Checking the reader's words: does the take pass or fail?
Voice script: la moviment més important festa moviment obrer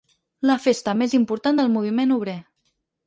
fail